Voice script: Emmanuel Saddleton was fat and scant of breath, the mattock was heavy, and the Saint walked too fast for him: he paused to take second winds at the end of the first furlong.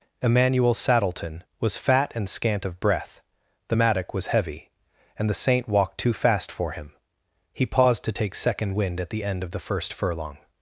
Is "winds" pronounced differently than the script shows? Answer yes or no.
yes